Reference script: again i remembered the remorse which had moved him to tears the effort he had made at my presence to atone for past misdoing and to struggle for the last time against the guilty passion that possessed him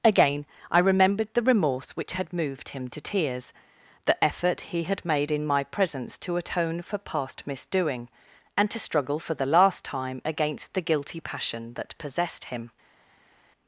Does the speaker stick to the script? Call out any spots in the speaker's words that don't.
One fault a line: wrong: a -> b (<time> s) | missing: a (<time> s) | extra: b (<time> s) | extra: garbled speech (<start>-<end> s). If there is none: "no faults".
wrong: at -> in (5.3 s)